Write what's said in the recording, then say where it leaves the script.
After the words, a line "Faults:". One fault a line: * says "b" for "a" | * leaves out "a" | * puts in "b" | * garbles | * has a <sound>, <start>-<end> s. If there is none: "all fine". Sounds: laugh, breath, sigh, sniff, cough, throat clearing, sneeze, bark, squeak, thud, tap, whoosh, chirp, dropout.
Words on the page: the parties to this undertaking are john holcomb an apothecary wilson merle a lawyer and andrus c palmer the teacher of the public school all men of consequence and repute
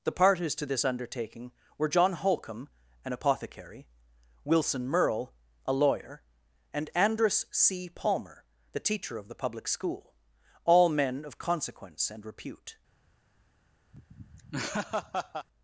the parties to this undertaking were john holcomb an apothecary wilson merle a lawyer and andrus c palmer the teacher of the public school all men of consequence and repute
Faults:
* says "were" for "are"
* has a laugh, 13.9-15.5 s